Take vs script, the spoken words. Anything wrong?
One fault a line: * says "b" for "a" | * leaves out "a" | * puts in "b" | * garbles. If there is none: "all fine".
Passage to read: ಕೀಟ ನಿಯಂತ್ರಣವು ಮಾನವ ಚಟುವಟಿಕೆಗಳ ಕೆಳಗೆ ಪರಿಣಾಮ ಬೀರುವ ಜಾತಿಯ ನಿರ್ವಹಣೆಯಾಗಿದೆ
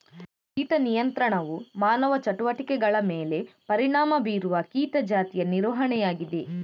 * says "ಮೇಲೆ" for "ಕೆಳಗೆ"
* puts in "ಕೀಟ"